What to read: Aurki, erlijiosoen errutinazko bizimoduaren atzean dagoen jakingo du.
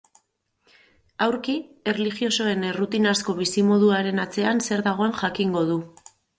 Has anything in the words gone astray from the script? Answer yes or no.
yes